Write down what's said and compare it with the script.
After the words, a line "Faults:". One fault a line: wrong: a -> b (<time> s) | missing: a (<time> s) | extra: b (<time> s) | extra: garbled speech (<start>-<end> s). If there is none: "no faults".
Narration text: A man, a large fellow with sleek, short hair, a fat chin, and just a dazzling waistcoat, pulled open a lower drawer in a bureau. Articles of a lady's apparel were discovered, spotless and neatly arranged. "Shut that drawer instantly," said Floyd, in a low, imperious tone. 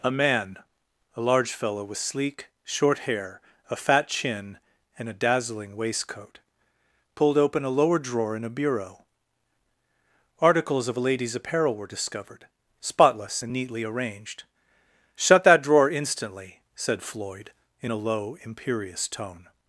A man, a large fellow with sleek, short hair, a fat chin, and a dazzling waistcoat, pulled open a lower drawer in a bureau. Articles of a lady's apparel were discovered, spotless and neatly arranged. "Shut that drawer instantly," said Floyd, in a low, imperious tone.
Faults:
missing: just (5.1 s)